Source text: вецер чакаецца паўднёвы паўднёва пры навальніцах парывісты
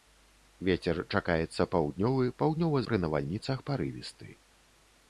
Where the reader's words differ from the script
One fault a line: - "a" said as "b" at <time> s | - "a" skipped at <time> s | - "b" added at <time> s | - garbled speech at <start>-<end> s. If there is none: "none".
none